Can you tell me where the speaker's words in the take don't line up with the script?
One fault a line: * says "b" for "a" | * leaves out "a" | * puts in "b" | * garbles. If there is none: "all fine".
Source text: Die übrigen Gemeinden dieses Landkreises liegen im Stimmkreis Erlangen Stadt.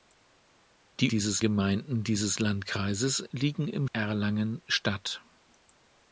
* says "dieses" for "übrigen"
* leaves out "Stimmkreis"